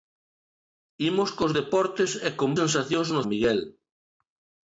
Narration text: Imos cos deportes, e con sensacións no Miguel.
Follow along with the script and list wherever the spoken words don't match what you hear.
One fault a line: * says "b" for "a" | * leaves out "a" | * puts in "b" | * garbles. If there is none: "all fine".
all fine